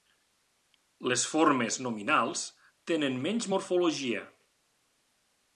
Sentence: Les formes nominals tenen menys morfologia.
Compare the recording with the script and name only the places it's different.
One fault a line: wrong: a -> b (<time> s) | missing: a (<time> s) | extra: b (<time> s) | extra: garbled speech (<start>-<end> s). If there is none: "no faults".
no faults